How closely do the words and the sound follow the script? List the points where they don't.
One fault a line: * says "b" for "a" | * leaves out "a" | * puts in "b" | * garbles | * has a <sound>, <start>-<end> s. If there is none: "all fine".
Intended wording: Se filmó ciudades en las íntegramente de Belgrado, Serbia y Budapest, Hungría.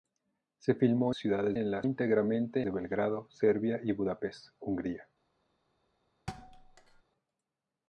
* has a thud, 6.3-7.0 s